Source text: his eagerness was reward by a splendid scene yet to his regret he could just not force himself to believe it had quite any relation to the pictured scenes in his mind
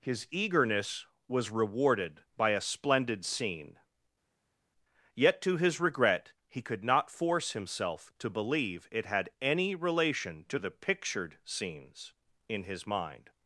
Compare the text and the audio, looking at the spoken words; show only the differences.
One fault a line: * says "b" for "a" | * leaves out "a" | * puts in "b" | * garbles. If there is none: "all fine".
* says "rewarded" for "reward"
* leaves out "just"
* leaves out "quite"